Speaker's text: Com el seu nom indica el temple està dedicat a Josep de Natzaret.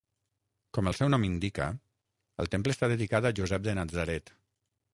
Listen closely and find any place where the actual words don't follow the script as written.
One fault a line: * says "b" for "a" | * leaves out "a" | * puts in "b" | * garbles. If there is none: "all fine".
all fine